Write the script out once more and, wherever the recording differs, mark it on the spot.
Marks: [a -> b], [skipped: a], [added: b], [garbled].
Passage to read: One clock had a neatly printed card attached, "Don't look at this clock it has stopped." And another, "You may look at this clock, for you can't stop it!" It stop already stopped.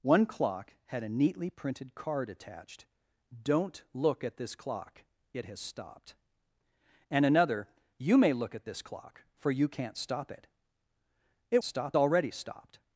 One clock had a neatly printed card attached, "Don't look at this clock it has stopped." And another, "You may look at this clock, for you can't stop it!" It stop already stopped.